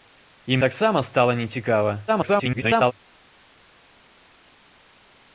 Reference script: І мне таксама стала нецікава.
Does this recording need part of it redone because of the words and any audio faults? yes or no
yes